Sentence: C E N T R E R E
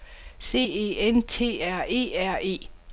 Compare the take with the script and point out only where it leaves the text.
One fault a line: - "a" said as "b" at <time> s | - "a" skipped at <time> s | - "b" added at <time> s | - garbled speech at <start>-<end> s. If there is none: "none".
none